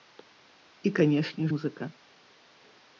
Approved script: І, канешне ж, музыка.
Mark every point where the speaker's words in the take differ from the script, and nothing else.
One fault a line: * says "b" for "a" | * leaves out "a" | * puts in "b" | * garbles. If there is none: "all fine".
* leaves out "ж"